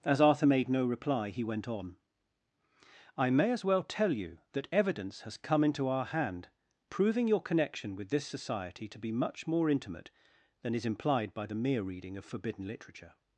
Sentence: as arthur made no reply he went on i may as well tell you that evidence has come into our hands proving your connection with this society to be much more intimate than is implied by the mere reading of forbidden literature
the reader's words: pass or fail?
fail